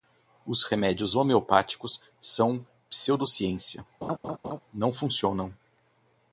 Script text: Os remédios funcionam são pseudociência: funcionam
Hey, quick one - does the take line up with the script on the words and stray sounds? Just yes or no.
no